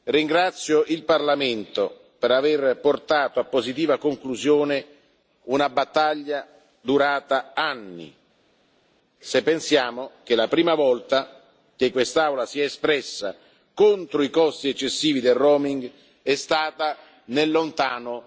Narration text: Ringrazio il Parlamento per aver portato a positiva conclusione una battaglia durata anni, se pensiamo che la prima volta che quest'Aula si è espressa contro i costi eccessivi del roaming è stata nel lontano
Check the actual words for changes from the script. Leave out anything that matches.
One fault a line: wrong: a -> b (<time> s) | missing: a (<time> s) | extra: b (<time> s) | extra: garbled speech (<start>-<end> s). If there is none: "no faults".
no faults